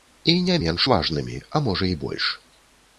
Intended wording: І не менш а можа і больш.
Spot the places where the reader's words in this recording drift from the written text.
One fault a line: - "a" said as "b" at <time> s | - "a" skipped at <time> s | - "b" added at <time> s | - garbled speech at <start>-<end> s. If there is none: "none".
- "важнымі" added at 0.9 s